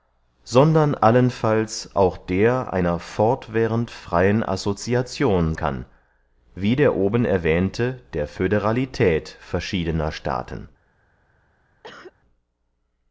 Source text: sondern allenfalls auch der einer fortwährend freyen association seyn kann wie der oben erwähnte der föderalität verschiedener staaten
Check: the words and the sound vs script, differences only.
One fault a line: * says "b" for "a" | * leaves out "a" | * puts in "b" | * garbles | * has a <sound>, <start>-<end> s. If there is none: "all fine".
* leaves out "seyn"
* has a cough, 11.8-12.1 s